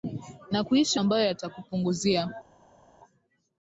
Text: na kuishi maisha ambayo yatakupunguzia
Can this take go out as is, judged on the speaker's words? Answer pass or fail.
fail